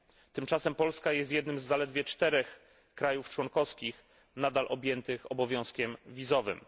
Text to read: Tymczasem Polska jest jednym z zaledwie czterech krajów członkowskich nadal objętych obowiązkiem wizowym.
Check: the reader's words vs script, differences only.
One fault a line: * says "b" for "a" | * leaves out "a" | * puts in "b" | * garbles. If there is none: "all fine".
all fine